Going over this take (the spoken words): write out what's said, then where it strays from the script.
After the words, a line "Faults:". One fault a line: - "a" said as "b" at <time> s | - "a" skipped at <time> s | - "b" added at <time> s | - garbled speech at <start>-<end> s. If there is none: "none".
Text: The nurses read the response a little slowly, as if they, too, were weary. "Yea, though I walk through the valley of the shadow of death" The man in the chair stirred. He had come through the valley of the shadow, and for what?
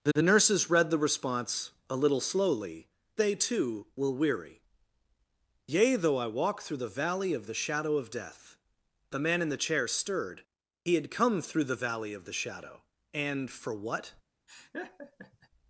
The the nurses read the response a little slowly, they, too, were weary. "Yea, though I walk through the valley of the shadow of death" The man in the chair stirred. He had come through the valley of the shadow, and for what?
Faults:
- "the" added at 0.1 s
- "as if" skipped at 2.9 s